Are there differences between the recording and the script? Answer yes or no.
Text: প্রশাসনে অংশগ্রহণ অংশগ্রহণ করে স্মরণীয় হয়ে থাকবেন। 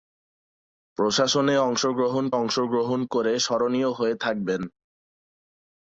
no